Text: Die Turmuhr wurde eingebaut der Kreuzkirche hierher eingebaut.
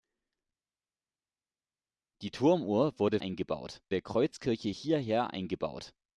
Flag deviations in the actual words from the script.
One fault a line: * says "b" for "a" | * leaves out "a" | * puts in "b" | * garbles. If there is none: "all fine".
all fine